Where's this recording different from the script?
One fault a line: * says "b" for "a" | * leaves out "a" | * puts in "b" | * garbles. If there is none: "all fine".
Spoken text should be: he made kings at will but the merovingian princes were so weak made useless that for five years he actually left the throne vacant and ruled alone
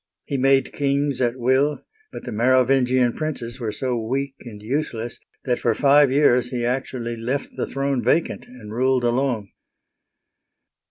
* says "and" for "made"